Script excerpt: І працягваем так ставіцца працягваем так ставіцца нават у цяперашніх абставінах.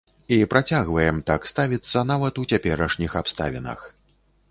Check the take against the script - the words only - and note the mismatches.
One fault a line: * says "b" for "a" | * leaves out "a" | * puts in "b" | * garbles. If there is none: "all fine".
* leaves out "працягваем так ставіцца"